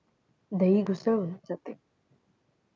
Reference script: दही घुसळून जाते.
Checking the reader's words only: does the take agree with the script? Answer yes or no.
yes